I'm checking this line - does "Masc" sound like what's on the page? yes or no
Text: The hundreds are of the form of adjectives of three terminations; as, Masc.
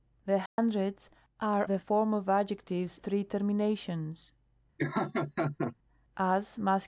yes